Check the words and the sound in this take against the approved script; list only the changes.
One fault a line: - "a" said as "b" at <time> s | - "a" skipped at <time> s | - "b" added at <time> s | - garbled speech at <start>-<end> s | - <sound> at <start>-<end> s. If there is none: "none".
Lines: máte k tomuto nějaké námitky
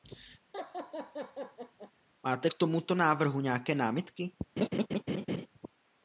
- laugh at 0.5-1.9 s
- "návrhu" added at 2.9 s
- laugh at 4.6-5.5 s